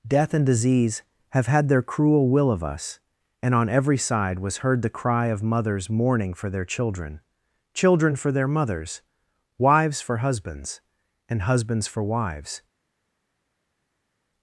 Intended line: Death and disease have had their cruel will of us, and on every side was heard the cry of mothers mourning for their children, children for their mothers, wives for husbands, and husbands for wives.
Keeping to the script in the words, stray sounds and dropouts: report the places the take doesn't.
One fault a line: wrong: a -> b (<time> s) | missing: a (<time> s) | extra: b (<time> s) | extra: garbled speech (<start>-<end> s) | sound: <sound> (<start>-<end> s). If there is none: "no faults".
no faults